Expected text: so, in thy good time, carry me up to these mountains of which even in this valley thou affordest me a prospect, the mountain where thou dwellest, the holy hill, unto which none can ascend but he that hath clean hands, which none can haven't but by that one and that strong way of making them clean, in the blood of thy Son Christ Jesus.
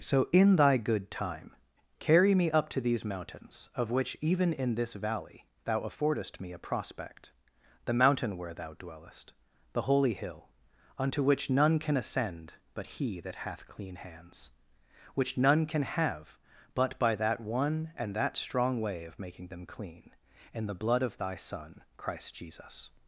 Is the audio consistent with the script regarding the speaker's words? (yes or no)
no